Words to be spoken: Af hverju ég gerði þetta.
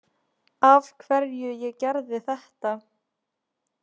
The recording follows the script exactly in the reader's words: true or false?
true